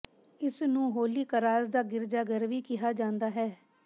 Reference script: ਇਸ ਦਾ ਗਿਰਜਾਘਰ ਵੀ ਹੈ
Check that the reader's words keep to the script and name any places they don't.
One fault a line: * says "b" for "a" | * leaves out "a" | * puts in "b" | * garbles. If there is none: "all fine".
* puts in "ਨੂੰ ਹੋਲੀ ਕਰਾਸ"
* puts in "ਕਿਹਾ ਜਾਂਦਾ"